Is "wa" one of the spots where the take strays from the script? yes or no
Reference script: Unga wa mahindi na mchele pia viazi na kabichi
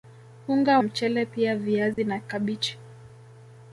yes